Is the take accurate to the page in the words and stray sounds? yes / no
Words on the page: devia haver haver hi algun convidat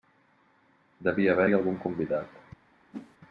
no